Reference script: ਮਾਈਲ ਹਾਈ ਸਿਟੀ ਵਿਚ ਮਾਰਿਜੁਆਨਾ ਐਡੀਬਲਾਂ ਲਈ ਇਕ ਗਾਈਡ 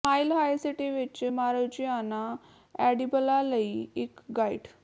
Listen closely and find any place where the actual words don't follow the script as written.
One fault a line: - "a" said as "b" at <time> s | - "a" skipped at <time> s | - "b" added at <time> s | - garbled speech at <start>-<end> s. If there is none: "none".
none